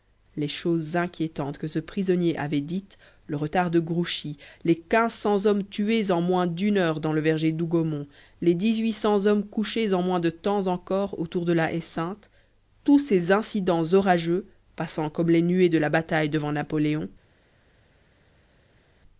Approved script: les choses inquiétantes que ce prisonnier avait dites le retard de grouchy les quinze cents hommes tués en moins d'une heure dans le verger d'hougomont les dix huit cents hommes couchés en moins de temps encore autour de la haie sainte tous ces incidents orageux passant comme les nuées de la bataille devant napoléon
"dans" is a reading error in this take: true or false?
false